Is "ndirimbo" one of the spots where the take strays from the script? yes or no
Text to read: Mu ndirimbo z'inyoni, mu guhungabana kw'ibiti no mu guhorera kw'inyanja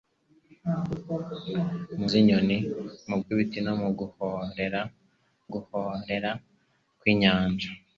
yes